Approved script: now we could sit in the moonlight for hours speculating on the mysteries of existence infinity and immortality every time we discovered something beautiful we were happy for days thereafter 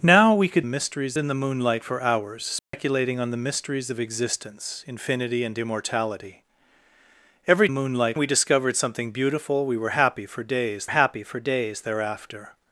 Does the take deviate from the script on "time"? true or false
true